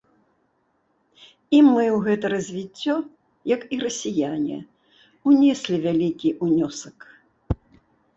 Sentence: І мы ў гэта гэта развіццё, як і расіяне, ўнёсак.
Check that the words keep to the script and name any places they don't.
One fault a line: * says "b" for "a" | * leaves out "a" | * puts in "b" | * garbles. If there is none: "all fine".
* leaves out "гэта"
* puts in "унеслі вялікі"